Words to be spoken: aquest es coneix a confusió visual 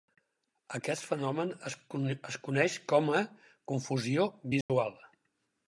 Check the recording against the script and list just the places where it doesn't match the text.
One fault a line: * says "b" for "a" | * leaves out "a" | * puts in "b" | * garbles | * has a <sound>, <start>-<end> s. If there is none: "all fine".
* puts in "fenomen"
* puts in "com"
* has a dropout, 4.6-4.7 s